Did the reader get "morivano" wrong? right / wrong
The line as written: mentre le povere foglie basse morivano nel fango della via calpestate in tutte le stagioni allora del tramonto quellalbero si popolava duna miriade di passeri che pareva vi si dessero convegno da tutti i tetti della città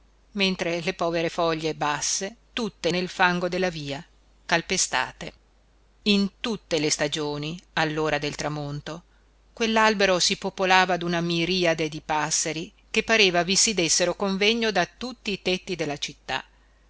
wrong